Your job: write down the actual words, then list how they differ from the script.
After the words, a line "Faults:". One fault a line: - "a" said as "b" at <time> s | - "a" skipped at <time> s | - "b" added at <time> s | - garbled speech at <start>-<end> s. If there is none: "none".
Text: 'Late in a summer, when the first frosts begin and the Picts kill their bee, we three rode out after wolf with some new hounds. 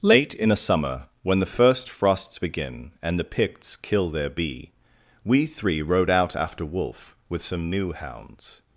'Late in a summer, when the first frosts begin and the Picts kill their bee, we three rode out after wolf with some new hounds.
Faults:
none